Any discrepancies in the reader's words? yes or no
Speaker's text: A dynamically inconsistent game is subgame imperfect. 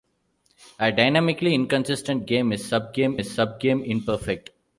yes